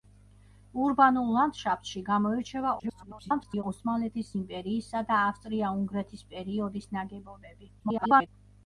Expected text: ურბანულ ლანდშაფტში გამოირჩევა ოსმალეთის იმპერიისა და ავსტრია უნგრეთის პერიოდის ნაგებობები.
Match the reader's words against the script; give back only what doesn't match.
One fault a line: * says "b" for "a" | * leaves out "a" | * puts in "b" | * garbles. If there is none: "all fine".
* garbles
* garbles